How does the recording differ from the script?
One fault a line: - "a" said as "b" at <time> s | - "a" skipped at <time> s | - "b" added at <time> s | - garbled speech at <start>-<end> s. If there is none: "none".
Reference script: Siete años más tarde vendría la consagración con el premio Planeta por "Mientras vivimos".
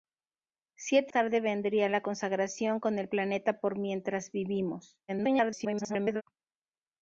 - "años más" skipped at 1.1 s
- "premio" skipped at 3.1 s
- garbled speech at 5.1-6.2 s